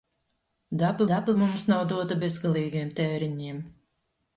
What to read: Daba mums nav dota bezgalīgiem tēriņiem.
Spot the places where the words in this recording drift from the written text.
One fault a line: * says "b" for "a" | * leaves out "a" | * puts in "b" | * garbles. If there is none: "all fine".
* puts in "daba"